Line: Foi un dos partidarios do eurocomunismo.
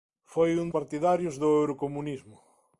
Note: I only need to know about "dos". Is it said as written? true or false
false